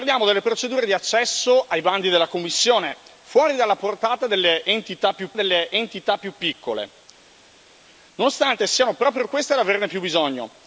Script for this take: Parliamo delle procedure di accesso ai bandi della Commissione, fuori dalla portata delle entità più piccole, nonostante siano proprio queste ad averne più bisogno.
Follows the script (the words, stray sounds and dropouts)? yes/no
no